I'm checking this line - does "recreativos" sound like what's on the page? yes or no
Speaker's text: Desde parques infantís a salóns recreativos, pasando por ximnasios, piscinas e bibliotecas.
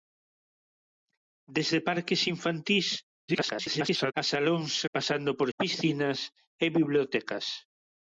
no